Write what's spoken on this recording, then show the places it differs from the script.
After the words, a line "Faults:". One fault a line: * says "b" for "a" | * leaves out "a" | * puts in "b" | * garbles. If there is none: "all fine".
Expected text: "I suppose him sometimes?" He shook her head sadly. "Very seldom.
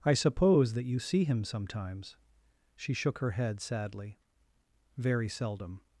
"I suppose that you see him sometimes?" She shook her head sadly. "Very seldom.
Faults:
* puts in "that you see"
* says "She" for "He"